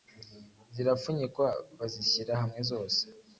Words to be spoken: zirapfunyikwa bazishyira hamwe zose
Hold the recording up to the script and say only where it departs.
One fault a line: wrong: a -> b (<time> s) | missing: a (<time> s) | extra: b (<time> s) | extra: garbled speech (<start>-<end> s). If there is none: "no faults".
no faults